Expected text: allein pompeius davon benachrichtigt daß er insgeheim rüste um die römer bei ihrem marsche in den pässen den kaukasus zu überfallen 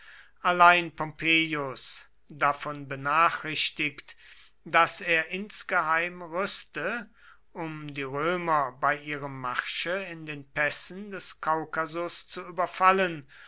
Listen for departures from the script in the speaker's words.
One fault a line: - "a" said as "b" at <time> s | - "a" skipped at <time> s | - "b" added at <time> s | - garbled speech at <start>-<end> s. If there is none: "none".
- "den" said as "des" at 11.1 s